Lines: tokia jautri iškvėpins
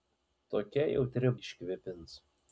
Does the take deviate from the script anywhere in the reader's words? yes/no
no